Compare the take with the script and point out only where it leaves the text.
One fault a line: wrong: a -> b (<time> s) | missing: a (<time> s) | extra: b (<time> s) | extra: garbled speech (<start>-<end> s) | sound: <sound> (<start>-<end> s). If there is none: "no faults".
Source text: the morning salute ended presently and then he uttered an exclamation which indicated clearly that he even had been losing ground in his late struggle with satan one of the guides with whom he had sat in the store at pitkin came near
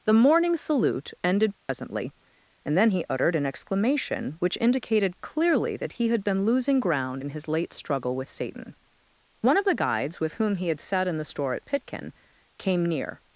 sound: dropout (1.6-1.7 s)
missing: even (6.1 s)